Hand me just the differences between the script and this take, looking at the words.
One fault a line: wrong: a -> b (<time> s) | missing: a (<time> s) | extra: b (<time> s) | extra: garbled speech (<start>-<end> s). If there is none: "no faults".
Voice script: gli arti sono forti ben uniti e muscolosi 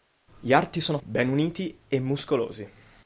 missing: forti (1.0 s)